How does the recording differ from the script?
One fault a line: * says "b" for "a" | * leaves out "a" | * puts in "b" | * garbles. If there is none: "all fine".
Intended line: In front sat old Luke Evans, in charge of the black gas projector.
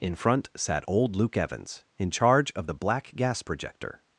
all fine